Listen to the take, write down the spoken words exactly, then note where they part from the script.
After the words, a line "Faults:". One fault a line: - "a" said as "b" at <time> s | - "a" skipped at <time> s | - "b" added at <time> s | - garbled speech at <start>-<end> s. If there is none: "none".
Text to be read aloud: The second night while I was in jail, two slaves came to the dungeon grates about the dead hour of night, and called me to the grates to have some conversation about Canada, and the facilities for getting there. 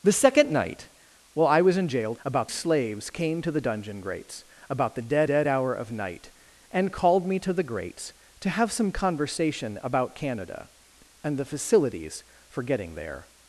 The second night while I was in jail, about slaves came to the dungeon grates about the dead dead hour of night, and called me to the grates to have some conversation about Canada, and the facilities for getting there.
Faults:
- "two" said as "about" at 2.2 s
- "dead" added at 5.3 s